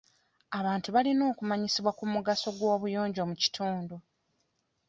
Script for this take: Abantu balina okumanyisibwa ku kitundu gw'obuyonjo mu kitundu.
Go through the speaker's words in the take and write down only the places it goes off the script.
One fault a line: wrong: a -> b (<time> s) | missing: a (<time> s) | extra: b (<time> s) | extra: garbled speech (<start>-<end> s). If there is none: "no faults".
wrong: kitundu -> mugaso (2.1 s)